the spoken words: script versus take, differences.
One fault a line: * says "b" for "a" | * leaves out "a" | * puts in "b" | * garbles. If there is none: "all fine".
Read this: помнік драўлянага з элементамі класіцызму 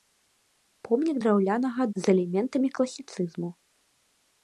all fine